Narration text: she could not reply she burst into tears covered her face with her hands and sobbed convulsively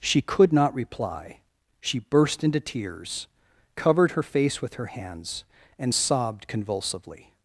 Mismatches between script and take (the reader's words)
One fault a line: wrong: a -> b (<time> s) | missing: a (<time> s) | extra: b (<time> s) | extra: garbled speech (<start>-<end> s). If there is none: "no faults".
no faults